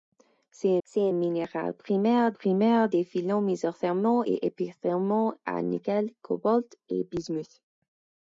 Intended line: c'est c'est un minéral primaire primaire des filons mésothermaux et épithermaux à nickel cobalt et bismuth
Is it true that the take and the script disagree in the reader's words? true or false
false